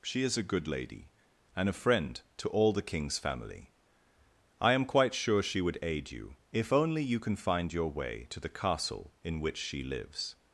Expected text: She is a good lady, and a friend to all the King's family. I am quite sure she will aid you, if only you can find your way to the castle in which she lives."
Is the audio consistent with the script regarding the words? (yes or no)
no